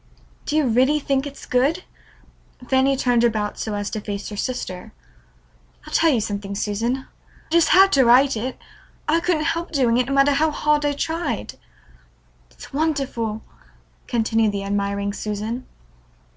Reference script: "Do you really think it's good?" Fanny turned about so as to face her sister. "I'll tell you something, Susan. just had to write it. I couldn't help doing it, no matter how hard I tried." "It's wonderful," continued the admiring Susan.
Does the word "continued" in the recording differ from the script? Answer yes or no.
no